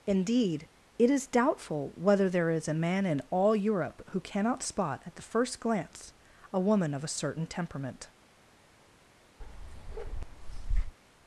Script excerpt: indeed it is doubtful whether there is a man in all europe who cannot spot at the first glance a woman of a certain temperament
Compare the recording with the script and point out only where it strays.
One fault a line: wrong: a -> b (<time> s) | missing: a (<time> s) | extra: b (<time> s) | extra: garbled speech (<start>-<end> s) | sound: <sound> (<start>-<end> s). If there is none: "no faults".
sound: bark (9.4-10.9 s)